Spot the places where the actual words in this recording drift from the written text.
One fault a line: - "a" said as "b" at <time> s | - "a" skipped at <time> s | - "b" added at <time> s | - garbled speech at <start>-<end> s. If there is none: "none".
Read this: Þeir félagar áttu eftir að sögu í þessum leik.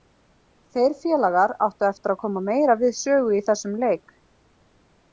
- "koma meira við" added at 2.3 s